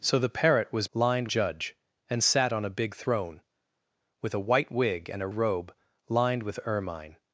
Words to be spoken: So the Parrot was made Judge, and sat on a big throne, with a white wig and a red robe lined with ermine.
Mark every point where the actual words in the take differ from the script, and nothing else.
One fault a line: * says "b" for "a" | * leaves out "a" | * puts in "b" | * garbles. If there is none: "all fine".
* says "lined" for "made"
* leaves out "red"